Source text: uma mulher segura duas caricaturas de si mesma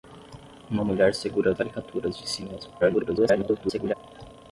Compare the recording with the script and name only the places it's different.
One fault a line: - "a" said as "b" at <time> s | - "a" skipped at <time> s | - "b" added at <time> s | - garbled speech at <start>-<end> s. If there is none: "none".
- "duas" skipped at 1.5 s
- garbled speech at 2.8-3.9 s